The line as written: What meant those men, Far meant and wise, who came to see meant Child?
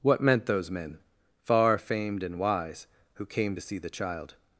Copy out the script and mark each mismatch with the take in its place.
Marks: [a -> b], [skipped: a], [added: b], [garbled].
What meant those men, Far [meant -> famed] and wise, who came to see [meant -> the] Child?